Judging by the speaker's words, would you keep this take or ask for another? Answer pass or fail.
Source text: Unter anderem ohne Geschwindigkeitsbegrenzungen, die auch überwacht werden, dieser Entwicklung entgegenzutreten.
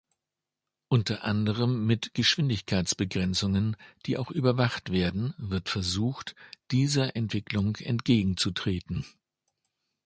fail